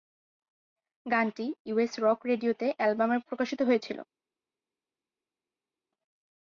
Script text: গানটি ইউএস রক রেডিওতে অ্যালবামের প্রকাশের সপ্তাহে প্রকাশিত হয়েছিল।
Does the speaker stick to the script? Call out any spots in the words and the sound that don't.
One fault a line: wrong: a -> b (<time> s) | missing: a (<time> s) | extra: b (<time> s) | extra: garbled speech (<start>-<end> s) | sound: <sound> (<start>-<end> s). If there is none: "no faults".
missing: প্রকাশের সপ্তাহে (3.2 s)